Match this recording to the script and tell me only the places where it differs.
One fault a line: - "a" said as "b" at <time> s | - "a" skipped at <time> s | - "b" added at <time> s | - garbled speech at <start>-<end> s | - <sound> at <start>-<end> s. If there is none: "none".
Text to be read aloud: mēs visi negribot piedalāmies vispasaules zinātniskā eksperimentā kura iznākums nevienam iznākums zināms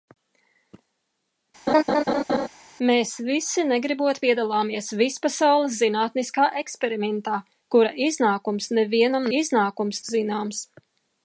- laugh at 1.7-2.5 s